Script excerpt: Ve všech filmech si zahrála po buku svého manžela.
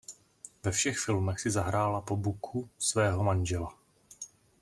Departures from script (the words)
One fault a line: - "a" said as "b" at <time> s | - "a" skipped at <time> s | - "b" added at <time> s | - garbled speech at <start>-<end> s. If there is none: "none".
none